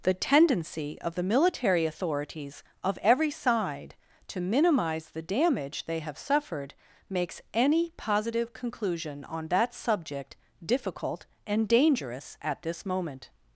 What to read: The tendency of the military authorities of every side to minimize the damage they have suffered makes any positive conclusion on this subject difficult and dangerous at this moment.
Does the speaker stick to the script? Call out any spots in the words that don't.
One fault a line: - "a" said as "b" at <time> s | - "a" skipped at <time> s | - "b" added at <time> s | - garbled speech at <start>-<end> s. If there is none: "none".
- "this" said as "that" at 9.5 s